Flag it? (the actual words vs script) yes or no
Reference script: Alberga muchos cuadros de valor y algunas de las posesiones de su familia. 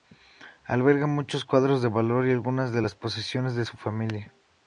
no